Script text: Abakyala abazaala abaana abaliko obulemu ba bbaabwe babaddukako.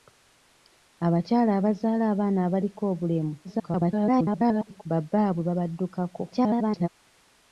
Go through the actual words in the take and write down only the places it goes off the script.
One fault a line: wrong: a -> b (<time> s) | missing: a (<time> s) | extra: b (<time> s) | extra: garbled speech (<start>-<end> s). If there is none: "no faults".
extra: garbled speech (3.4-4.8 s)
extra: garbled speech (6.3-6.9 s)